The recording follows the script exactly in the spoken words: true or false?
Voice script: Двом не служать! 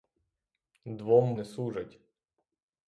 true